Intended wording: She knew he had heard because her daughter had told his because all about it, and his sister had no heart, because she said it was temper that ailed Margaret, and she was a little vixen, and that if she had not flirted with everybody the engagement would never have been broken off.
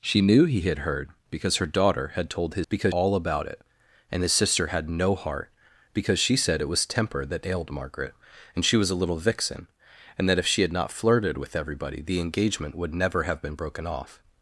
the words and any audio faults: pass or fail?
pass